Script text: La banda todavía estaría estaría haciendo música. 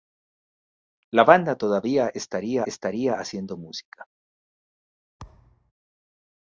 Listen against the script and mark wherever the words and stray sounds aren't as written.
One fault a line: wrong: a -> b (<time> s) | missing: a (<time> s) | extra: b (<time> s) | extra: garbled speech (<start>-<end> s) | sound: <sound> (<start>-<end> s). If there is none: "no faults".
sound: thud (5.2-5.7 s)